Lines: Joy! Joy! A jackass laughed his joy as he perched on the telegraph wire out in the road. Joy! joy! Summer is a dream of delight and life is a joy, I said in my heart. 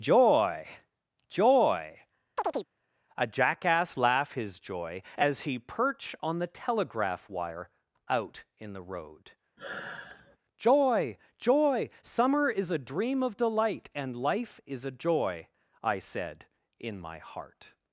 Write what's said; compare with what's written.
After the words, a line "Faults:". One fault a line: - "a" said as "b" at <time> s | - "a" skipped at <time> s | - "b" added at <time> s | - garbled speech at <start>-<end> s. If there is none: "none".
Joy! Joy! A jackass laugh his joy as he perch on the telegraph wire out in the road. Joy! joy! Summer is a dream of delight and life is a joy, I said in my heart.
Faults:
- "laughed" said as "laugh" at 4.0 s
- "perched" said as "perch" at 5.6 s